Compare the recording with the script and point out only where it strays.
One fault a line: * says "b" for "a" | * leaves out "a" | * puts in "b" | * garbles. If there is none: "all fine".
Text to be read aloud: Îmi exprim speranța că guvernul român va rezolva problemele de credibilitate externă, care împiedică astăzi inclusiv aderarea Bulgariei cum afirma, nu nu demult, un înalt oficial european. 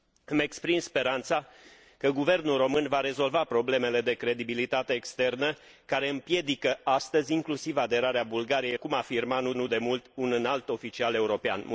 all fine